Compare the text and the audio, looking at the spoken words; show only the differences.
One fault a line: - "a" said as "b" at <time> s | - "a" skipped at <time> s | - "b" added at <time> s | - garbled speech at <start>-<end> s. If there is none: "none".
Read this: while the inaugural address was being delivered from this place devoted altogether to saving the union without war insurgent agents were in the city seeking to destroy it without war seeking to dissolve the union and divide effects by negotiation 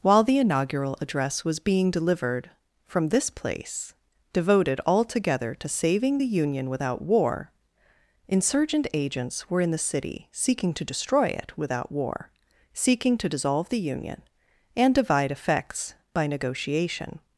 none